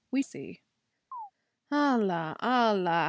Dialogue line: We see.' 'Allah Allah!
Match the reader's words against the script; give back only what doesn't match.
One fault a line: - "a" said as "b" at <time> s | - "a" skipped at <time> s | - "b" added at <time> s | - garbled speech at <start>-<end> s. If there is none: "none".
none